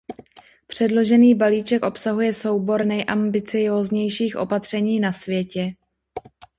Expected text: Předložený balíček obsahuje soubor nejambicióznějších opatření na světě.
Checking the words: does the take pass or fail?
pass